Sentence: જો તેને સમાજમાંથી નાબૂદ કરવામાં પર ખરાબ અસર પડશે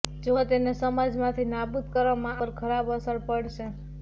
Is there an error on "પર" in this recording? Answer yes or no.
no